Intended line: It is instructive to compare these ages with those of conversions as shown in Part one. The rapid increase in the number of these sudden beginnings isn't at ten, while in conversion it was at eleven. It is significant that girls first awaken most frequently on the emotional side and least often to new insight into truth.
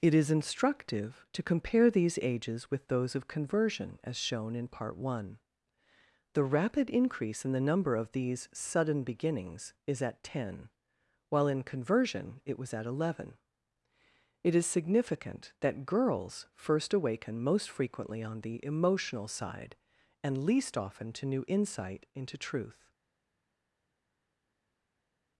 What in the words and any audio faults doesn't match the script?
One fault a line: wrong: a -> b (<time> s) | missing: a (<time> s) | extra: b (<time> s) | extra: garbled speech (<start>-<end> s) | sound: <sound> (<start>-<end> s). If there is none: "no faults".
wrong: conversions -> conversion (3.3 s)
wrong: isn't -> is (9.8 s)